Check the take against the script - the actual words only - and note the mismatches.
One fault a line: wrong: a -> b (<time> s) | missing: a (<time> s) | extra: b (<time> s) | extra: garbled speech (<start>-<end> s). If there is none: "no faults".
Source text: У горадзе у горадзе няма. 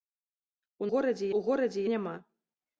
no faults